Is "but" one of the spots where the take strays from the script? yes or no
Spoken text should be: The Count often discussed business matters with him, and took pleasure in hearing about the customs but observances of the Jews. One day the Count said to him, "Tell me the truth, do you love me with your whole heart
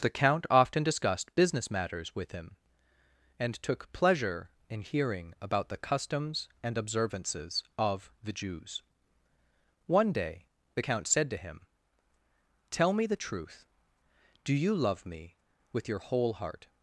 yes